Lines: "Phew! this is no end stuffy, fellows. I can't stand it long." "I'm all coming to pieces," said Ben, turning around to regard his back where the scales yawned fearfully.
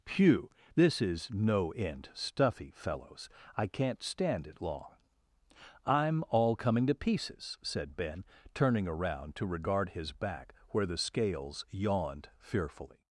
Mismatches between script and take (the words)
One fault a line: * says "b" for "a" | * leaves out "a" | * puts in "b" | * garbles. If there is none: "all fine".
all fine